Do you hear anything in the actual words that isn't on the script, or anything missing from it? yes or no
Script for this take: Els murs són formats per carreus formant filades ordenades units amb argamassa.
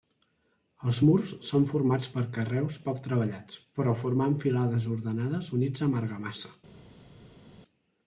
yes